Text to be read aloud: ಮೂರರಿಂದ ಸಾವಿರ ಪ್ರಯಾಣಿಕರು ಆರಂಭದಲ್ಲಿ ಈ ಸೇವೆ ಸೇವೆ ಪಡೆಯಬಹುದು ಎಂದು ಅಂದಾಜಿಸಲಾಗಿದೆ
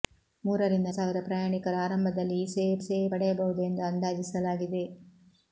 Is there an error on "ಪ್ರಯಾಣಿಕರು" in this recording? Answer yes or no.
no